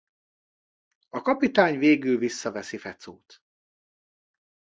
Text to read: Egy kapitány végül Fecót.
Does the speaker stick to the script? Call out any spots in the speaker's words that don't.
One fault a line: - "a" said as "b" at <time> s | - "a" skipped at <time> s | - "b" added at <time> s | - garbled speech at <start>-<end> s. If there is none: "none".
- "Egy" said as "A" at 1.1 s
- "visszaveszi" added at 2.2 s